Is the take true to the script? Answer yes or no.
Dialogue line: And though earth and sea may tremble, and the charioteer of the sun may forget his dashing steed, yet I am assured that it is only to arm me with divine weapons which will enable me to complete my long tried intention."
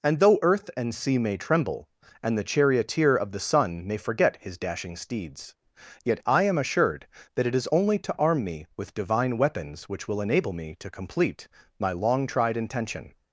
no